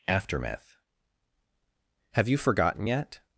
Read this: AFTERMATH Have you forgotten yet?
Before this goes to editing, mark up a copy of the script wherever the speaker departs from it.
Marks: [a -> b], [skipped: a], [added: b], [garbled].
AFTERMATH Have you forgotten yet?